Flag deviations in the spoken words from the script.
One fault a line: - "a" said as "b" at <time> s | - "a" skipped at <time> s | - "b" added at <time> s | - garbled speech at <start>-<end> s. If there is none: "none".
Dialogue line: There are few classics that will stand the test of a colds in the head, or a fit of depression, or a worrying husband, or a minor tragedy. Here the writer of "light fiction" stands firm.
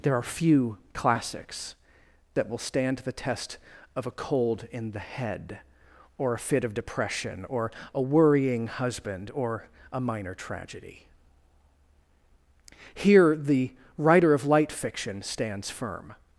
- "colds" said as "cold" at 4.1 s